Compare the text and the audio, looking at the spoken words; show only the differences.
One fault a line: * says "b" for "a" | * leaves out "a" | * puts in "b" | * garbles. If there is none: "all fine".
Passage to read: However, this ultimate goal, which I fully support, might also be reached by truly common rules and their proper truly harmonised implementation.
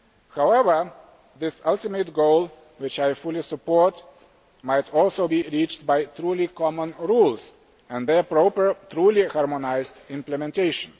all fine